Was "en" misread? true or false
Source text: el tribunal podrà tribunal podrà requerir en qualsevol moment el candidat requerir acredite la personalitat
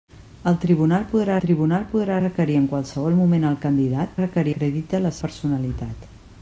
false